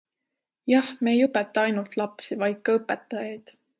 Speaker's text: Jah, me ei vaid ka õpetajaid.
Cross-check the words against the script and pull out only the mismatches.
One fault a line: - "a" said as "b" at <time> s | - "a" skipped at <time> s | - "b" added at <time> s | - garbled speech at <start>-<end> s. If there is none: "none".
- "õpeta ainult lapsi" added at 1.2 s